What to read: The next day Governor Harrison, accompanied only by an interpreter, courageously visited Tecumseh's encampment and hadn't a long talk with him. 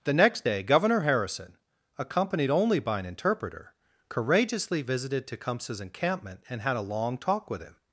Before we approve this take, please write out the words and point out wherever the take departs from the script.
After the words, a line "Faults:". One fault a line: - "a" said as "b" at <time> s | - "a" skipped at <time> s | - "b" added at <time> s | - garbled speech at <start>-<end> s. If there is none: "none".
The next day Governor Harrison, accompanied only by an interpreter, courageously visited Tecumseh's encampment and had a long talk with him.
Faults:
- "hadn't" said as "had" at 6.6 s